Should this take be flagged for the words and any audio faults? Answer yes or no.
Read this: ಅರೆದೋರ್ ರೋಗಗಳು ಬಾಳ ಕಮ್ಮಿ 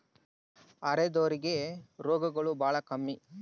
yes